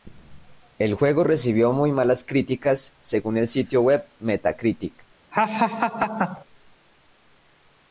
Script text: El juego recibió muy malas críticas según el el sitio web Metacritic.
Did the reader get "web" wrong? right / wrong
right